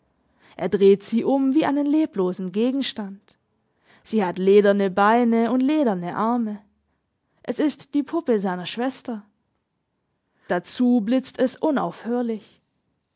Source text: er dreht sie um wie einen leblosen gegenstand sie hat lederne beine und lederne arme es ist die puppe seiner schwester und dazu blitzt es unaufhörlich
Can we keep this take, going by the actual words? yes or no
no